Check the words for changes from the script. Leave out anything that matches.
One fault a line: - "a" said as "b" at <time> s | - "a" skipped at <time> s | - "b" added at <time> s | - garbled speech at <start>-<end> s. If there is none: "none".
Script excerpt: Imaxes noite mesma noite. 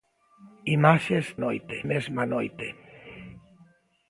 none